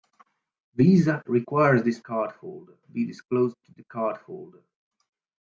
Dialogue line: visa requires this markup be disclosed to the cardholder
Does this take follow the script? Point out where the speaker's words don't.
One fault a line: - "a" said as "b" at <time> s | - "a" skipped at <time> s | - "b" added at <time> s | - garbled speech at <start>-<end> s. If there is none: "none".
- "markup" said as "cardholder" at 2.1 s